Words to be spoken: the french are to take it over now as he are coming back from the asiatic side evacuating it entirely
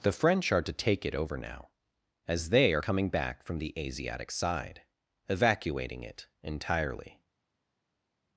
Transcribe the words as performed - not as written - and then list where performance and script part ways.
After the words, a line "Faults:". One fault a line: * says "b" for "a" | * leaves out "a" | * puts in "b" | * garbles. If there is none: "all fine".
the french are to take it over now as they are coming back from the asiatic side evacuating it entirely
Faults:
* says "they" for "he"